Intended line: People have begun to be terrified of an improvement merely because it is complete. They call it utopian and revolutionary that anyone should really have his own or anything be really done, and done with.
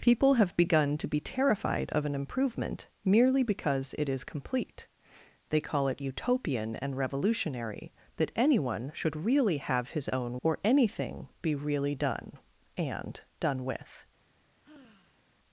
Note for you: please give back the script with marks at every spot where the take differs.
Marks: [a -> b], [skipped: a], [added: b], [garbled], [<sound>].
People have begun to be terrified of an improvement merely because it is complete. They call it utopian and revolutionary that anyone should really have his own or anything be really done, and done with. [sigh]